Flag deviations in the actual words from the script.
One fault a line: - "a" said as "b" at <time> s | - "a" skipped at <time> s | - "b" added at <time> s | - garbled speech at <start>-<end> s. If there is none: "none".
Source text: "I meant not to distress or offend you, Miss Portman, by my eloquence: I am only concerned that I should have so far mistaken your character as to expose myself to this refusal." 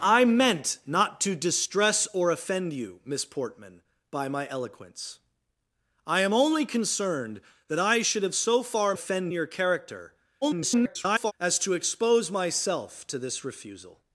- "mistaken" said as "offend" at 8.9 s
- garbled speech at 10.4-11.3 s